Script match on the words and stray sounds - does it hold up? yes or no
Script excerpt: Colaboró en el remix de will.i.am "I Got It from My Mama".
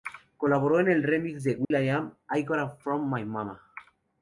no